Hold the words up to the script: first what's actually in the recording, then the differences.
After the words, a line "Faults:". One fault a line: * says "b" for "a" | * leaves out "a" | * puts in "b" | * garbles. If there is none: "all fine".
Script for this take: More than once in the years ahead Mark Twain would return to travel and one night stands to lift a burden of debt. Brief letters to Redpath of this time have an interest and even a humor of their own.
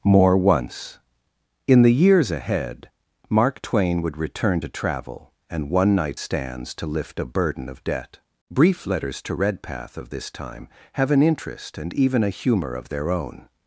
More once in the years ahead Mark Twain would return to travel and one night stands to lift a burden of debt. Brief letters to Redpath of this time have an interest and even a humor of their own.
Faults:
* leaves out "than"